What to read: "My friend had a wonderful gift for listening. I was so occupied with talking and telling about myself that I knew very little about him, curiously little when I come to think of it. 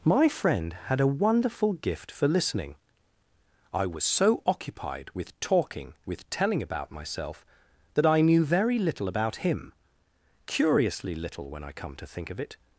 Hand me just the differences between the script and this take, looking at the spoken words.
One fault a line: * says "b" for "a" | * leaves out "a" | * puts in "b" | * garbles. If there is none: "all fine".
* says "with" for "and"